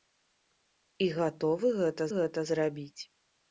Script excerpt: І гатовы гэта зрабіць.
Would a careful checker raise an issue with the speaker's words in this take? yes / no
yes